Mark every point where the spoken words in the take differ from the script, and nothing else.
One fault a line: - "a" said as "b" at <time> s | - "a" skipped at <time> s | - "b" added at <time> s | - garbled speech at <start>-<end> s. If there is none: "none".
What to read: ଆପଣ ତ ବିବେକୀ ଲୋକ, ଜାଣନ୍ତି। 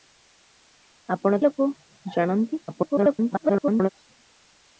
- "ତ ବିବେକୀ" skipped at 1.4 s
- garbled speech at 2.7-3.9 s